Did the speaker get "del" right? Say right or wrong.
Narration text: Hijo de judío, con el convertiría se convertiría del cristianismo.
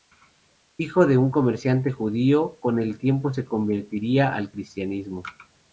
wrong